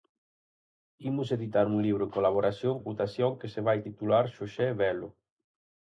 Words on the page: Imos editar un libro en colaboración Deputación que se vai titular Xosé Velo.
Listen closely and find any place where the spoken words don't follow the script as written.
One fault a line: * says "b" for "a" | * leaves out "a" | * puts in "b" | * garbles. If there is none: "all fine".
all fine